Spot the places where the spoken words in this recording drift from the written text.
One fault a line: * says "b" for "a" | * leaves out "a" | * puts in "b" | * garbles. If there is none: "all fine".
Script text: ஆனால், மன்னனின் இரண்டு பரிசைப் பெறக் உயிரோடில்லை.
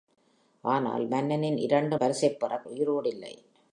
all fine